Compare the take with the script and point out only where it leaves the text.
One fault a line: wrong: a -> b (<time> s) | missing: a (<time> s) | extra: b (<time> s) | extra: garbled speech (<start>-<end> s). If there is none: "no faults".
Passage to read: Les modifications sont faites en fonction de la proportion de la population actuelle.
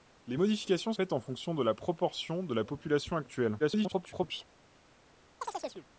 missing: sont (0.9 s)
extra: garbled speech (3.6-4.4 s)